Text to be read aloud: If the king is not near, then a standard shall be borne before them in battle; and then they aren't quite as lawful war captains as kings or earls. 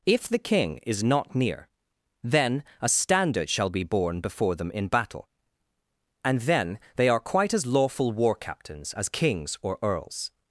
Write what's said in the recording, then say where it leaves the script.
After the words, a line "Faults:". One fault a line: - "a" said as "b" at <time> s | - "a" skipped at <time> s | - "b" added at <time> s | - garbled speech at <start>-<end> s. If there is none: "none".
If the king is not near, then a standard shall be borne before them in battle; and then they are quite as lawful war captains as kings or earls.
Faults:
- "aren't" said as "are" at 7.1 s